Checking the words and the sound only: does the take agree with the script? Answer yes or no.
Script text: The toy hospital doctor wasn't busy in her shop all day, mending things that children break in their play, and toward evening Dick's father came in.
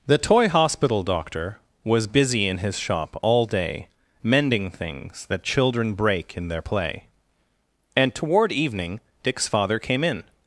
no